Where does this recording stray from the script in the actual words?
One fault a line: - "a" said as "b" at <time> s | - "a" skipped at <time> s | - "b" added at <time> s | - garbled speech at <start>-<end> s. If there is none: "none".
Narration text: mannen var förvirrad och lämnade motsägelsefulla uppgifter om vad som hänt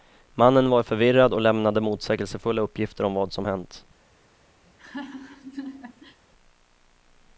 none